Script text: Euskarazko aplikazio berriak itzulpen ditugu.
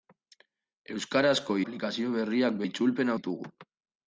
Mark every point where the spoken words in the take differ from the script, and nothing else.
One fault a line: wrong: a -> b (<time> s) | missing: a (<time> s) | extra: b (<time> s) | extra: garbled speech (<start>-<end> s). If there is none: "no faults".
no faults